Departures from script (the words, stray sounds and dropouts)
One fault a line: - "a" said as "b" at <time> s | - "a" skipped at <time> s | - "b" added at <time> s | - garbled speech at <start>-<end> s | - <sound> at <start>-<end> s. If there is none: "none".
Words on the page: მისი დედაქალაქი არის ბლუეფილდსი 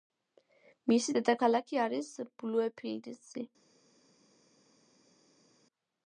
none